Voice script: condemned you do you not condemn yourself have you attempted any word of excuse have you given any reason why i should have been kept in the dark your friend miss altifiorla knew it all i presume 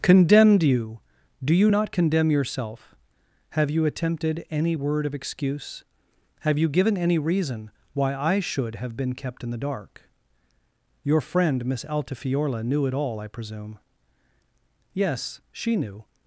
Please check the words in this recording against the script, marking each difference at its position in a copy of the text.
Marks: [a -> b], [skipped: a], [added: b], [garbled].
condemned you do you not condemn yourself have you attempted any word of excuse have you given any reason why i should have been kept in the dark your friend miss altifiorla knew it all i presume [added: yes she knew]